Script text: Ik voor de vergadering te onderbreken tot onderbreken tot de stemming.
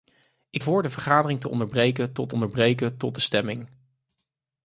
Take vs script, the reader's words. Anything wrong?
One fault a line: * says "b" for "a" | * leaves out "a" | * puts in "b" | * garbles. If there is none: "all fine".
all fine